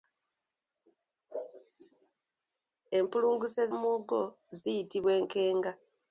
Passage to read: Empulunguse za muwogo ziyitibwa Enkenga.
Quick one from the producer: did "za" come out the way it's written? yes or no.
no